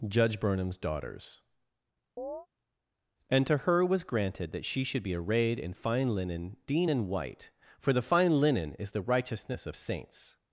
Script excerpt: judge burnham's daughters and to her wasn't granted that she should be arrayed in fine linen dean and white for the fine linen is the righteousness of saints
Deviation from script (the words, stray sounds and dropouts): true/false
true